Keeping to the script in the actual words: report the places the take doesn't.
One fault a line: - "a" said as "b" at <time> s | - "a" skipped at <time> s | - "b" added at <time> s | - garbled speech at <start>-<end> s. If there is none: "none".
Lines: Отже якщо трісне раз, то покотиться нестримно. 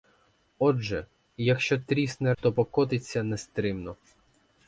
- "раз" skipped at 2.3 s